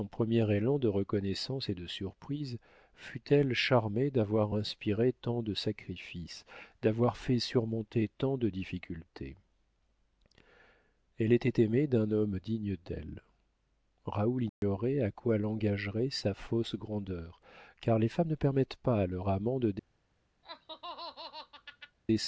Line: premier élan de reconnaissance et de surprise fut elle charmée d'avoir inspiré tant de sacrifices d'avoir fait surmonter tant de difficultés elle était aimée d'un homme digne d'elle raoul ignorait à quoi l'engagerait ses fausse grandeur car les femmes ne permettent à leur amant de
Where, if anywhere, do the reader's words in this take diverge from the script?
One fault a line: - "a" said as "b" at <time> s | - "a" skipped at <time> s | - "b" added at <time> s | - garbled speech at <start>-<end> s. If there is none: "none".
- "ses" said as "sa" at 16.1 s
- "pas" added at 18.8 s